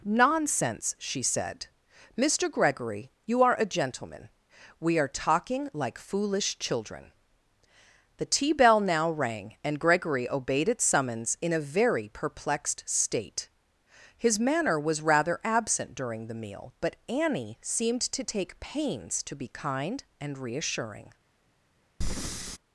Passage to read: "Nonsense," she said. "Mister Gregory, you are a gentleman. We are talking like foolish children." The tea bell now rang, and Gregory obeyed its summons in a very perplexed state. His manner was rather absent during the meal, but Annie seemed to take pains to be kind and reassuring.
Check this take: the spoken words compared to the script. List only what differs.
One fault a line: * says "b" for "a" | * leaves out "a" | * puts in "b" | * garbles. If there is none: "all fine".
all fine